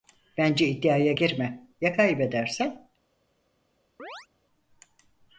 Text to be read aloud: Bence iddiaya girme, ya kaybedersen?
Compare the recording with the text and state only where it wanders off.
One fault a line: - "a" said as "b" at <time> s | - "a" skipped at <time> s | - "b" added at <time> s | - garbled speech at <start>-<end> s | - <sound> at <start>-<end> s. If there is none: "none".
- chirp at 4.0-4.3 s